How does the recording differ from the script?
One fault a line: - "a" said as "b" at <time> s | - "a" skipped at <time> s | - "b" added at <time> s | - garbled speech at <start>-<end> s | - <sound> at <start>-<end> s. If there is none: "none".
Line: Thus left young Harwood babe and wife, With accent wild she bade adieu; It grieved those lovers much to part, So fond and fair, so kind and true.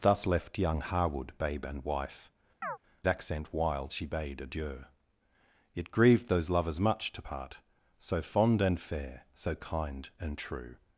- "With" skipped at 2.3 s
- chirp at 2.6-2.8 s